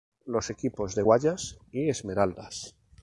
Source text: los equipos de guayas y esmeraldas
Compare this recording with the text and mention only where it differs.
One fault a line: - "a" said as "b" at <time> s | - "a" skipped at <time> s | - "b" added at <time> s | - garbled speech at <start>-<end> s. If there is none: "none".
none